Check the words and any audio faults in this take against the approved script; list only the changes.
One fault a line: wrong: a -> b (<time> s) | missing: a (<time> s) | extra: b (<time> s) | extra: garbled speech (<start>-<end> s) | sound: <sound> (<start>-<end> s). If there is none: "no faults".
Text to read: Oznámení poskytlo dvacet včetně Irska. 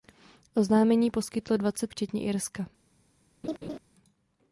sound: laugh (3.4-3.8 s)